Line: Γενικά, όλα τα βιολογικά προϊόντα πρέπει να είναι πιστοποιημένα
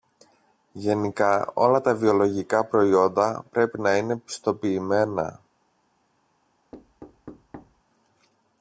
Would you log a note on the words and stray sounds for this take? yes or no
yes